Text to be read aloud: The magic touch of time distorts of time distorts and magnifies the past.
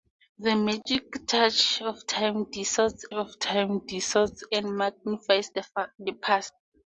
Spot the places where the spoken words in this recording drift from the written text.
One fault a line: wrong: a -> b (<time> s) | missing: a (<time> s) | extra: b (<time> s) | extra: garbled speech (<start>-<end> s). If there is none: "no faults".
no faults